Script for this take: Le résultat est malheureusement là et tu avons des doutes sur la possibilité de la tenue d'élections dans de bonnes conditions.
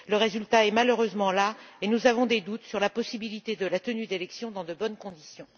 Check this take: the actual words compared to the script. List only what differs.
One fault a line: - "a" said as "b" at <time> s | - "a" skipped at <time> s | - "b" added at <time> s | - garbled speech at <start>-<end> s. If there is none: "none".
- "tu" said as "nous" at 1.9 s